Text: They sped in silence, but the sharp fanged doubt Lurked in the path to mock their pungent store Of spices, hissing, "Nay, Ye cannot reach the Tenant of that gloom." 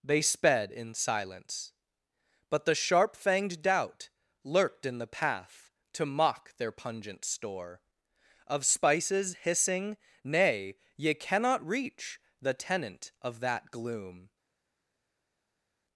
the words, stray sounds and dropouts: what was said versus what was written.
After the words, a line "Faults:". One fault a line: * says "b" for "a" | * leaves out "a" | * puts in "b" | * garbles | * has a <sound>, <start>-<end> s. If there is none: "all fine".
They sped in silence, but the sharp fanged doubt Lurked in the path to mock their pungent store Of spices, hissing, "Nay, Ye cannot reach the Tenant of that gloom."
Faults:
all fine